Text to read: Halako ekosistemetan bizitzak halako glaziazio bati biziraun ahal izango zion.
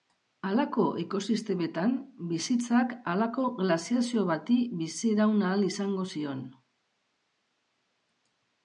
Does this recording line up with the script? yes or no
yes